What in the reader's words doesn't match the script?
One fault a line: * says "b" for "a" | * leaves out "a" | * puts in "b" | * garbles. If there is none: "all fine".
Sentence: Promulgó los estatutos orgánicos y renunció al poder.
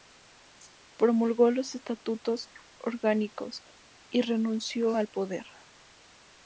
all fine